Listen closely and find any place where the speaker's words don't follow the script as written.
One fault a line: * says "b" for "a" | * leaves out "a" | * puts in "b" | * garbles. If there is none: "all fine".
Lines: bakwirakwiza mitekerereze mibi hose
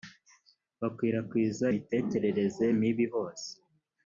all fine